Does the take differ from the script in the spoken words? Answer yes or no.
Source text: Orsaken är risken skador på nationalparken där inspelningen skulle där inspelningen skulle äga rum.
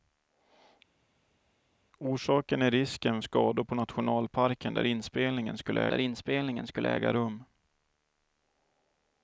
no